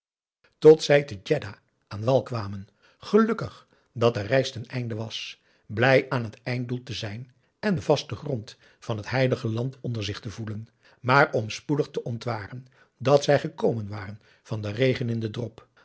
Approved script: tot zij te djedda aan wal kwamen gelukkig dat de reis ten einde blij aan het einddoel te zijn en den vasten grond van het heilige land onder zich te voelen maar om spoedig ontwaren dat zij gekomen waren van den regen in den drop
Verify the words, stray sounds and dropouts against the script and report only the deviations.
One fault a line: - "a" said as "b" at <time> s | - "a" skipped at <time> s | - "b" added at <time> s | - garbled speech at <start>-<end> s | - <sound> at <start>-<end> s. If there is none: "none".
- "was" added at 5.0 s
- "te" added at 11.9 s